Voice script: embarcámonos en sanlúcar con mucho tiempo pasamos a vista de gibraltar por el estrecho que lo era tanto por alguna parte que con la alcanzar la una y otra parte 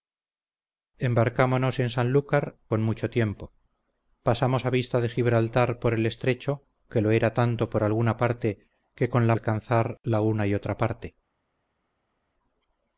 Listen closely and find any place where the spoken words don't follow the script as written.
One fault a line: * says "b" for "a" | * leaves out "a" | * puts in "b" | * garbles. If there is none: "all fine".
all fine